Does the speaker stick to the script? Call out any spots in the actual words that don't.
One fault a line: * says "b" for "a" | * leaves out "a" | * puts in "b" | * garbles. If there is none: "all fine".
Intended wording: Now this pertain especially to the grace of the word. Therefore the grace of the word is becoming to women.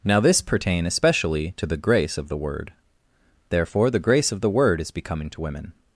all fine